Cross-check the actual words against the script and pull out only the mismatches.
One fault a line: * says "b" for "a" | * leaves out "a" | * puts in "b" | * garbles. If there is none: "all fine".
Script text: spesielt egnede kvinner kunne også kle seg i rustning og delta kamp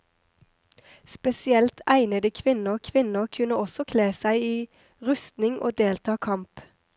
* puts in "kvinner"